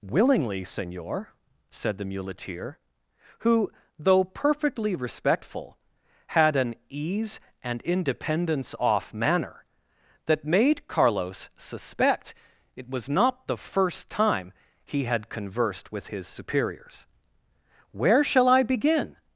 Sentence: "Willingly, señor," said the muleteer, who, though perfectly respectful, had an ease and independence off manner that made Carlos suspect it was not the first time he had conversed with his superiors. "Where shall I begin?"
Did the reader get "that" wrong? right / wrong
right